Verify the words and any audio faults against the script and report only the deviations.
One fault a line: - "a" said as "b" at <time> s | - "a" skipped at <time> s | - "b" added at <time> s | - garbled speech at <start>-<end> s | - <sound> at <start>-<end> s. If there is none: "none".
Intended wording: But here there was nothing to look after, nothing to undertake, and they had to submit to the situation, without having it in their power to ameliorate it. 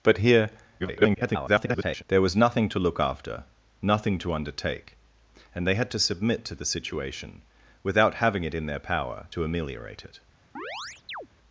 - garbled speech at 0.8-2.0 s
- chirp at 10.6-11.3 s